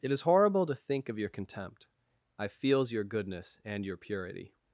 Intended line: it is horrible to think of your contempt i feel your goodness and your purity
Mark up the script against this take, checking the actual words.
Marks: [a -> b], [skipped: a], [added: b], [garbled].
it is horrible to think of your contempt i [feel -> feels] your goodness and your purity